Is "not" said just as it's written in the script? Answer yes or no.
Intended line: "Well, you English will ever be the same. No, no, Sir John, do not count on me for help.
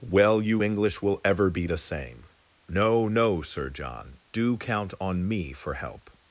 no